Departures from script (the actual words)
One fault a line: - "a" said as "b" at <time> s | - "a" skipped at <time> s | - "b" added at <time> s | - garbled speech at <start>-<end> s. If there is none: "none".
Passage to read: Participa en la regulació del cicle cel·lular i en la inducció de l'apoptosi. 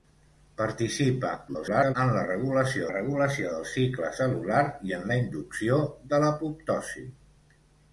- garbled speech at 1.5-2.0 s
- "regulació" added at 2.9 s